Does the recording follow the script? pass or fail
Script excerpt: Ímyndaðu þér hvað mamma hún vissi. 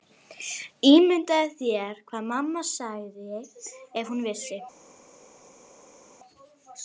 fail